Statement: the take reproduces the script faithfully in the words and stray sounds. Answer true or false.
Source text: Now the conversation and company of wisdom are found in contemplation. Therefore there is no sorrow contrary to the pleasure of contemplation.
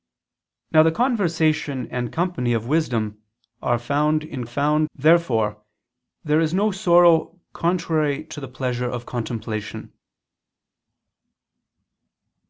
false